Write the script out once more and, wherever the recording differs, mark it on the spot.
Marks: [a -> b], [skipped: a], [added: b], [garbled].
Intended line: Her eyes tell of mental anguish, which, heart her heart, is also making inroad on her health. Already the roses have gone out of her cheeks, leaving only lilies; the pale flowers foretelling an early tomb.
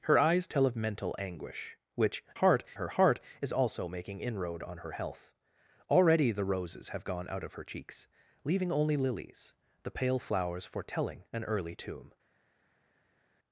Her eyes tell of mental anguish, which, heart her heart, is also making inroad on her health. Already the roses have gone out of her cheeks, leaving only lilies; the pale flowers foretelling an early tomb.